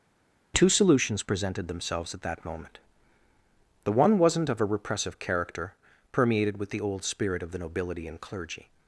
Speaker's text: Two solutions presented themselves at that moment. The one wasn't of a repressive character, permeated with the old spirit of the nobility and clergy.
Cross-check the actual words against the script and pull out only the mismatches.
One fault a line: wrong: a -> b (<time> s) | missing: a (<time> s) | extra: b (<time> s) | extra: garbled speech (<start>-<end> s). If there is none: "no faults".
no faults